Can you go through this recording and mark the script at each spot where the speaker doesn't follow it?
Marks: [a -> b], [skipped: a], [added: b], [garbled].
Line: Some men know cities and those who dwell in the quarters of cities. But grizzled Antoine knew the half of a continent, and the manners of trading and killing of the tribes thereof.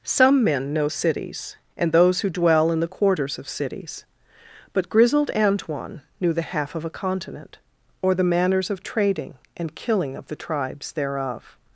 Some men know cities and those who dwell in the quarters of cities. But grizzled Antoine knew the half of a continent, [and -> or] the manners of trading and killing of the tribes thereof.